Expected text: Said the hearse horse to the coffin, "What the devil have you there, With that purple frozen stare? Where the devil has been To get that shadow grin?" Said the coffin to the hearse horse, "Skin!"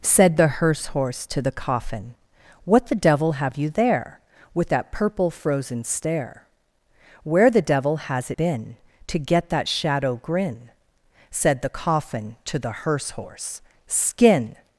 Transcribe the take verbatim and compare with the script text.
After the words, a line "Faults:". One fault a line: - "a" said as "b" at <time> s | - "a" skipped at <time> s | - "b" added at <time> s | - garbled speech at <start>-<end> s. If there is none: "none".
Said the hearse horse to the coffin, "What the devil have you there, With that purple frozen stare? Where the devil has been To get that shadow grin?" Said the coffin to the hearse horse, "Skin!"
Faults:
none